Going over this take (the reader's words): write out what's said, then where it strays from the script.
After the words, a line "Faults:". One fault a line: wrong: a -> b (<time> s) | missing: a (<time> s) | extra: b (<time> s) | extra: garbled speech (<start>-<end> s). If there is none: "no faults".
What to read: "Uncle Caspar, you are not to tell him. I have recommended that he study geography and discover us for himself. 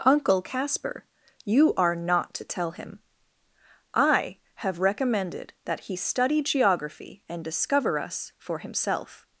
"Uncle Caspar, you are not to tell him. I have recommended that he study geography and discover us for himself.
Faults:
no faults